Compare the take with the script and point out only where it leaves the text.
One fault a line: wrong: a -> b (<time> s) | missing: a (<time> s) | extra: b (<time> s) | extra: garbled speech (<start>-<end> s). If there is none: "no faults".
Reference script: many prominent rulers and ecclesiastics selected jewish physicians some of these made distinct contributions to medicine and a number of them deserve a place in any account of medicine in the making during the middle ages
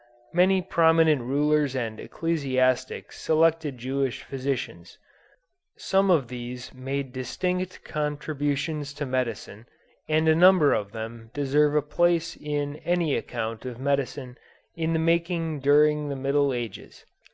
no faults